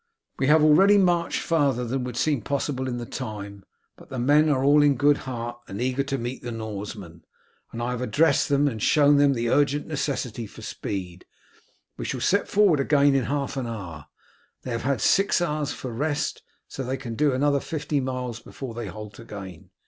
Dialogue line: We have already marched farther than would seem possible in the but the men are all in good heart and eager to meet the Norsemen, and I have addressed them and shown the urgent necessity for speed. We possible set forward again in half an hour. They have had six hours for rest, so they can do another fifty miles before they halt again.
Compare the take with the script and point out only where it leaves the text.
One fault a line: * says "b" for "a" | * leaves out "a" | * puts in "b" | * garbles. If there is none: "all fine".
* puts in "time"
* puts in "them"
* says "shall" for "possible"